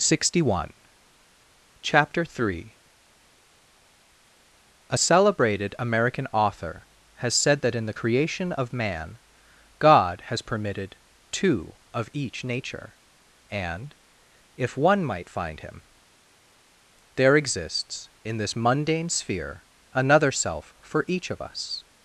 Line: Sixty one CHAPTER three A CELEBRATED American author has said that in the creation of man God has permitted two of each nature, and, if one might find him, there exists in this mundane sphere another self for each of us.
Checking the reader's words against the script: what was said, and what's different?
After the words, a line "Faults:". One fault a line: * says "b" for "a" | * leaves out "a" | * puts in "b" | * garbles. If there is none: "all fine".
Sixty one CHAPTER three A CELEBRATED American author has said that in the creation of man God has permitted two of each nature, and, if one might find him, there exists in this mundane sphere another self for each of us.
Faults:
all fine